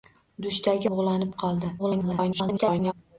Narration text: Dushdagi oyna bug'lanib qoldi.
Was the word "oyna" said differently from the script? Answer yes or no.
yes